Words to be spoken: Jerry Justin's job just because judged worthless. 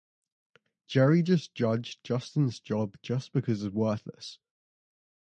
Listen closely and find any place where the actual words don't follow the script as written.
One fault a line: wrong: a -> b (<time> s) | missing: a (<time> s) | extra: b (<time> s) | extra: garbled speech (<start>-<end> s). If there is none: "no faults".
extra: just judged (1.2 s)
wrong: judged -> it's (3.6 s)